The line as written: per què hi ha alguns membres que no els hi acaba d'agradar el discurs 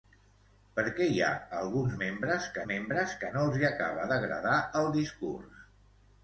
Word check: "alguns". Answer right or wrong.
right